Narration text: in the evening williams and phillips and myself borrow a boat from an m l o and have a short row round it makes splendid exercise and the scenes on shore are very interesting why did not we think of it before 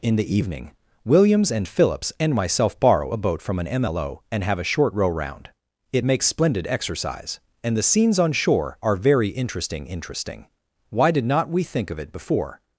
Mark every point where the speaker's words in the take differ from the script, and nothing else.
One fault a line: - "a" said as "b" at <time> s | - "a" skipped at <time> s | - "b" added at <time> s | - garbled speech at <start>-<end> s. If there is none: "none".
- "interesting" added at 9.9 s